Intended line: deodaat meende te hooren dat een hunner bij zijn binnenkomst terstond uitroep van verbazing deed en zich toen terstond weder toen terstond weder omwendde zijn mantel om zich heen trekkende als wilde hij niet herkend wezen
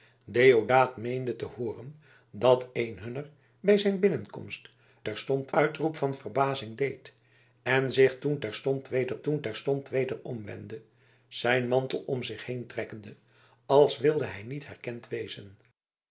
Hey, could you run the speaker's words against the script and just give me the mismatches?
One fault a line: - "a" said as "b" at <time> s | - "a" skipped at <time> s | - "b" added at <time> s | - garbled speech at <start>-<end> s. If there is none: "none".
none